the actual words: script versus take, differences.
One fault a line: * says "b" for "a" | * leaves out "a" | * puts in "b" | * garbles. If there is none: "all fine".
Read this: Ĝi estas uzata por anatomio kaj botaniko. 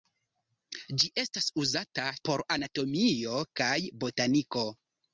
all fine